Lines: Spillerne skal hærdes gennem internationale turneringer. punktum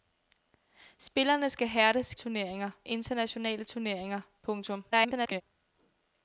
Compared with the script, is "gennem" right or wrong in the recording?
wrong